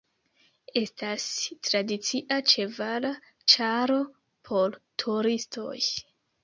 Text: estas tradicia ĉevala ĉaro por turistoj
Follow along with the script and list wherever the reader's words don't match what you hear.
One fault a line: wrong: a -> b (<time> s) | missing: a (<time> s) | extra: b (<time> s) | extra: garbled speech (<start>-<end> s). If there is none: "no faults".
no faults